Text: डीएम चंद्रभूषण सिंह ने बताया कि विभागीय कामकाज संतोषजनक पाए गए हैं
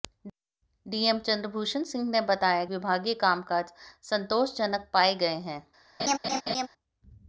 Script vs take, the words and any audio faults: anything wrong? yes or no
yes